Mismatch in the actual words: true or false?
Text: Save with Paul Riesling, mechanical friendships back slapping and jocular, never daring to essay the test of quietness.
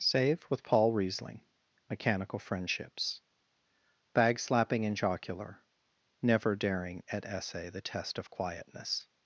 true